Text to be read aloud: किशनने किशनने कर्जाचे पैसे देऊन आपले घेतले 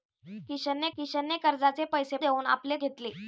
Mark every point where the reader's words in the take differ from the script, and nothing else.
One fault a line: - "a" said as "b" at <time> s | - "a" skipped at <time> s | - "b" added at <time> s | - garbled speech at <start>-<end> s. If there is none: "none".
none